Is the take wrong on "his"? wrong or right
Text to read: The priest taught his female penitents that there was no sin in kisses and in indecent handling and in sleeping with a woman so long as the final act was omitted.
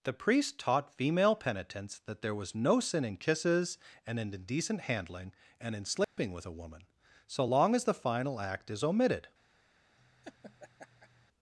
wrong